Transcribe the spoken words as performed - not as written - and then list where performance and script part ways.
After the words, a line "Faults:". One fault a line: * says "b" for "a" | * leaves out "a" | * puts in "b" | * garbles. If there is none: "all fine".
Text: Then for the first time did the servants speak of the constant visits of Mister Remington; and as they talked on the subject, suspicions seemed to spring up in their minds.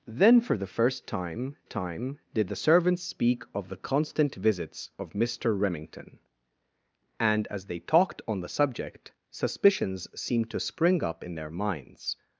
Then for the first time time did the servants speak of the constant visits of Mister Remington; and as they talked on the subject, suspicions seemed to spring up in their minds.
Faults:
* puts in "time"